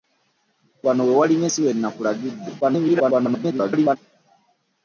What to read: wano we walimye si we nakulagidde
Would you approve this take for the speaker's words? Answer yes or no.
no